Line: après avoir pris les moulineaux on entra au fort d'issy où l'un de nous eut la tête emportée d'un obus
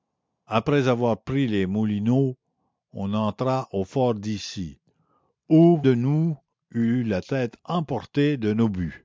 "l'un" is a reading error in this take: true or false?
true